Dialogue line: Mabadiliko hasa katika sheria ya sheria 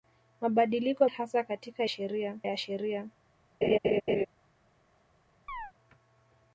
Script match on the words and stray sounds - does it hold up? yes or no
no